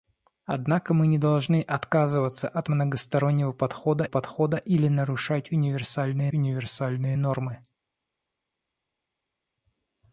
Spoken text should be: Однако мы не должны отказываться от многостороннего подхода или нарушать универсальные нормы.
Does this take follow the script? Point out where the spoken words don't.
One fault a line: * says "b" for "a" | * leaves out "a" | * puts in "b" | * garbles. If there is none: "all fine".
* puts in "подхода"
* puts in "универсальные"